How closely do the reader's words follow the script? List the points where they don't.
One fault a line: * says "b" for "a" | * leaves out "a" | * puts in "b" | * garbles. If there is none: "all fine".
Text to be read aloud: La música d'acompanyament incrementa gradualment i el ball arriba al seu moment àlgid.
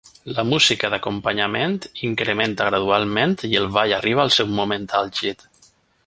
all fine